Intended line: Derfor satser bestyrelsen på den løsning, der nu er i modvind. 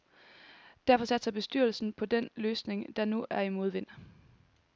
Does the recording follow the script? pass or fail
pass